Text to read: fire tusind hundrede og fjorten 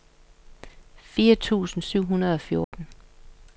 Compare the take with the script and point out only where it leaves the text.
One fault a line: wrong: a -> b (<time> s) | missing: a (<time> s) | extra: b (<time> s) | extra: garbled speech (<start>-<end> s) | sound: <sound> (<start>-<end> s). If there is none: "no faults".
extra: syv (1.8 s)
sound: dropout (2.6-2.7 s)